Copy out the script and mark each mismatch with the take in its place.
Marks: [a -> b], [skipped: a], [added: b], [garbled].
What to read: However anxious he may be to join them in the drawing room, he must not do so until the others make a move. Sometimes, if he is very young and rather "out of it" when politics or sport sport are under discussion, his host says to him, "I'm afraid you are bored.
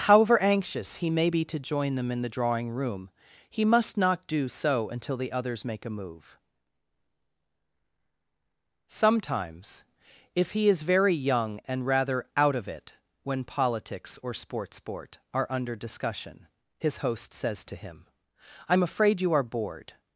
However anxious he may be to join them in the drawing room, he must not do so until the others make a move. Sometimes, if he is very young and rather "out of it" when politics or sport sport are under discussion, his host says to him, "I'm afraid you are bored.